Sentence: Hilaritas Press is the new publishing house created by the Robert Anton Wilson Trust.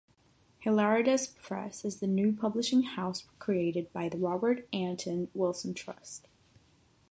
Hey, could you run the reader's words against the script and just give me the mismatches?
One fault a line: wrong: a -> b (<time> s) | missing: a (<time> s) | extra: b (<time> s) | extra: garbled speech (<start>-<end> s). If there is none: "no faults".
no faults